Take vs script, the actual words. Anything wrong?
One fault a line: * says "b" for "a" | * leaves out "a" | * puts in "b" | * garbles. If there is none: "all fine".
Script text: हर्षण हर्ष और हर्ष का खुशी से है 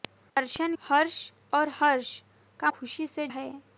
all fine